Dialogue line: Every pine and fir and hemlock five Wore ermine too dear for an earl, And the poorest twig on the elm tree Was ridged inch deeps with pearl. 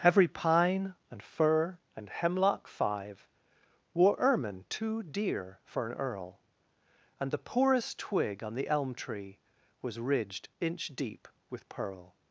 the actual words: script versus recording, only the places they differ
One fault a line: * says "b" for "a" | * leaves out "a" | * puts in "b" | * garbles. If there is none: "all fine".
* says "deep" for "deeps"